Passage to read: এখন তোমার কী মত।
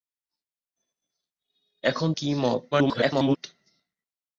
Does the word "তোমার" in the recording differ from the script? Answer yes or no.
yes